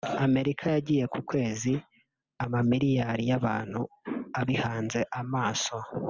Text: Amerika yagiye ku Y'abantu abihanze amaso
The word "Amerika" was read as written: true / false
true